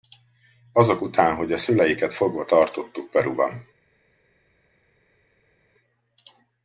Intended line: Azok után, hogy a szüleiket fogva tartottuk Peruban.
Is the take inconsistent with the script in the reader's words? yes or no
no